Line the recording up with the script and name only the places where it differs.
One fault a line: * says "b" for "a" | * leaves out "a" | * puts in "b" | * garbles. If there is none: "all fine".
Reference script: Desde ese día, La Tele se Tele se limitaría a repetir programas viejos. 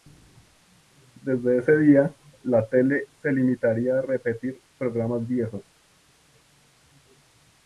* leaves out "Tele se"